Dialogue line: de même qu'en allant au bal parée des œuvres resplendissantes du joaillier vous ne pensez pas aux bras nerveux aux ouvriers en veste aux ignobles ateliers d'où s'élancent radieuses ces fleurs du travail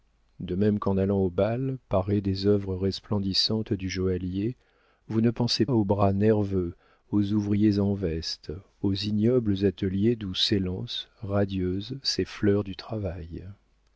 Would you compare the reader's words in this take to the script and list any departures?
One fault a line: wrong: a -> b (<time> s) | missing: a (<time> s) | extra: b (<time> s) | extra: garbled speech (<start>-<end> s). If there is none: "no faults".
missing: pas (5.7 s)